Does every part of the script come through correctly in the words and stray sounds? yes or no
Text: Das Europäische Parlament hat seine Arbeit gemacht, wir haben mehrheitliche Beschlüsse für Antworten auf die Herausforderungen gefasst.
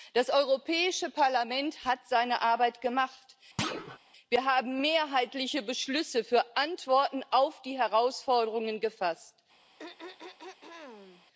no